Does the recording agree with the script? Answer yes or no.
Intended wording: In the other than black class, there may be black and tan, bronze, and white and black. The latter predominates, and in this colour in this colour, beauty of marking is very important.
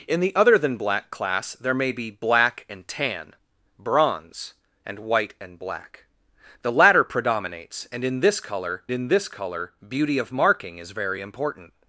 yes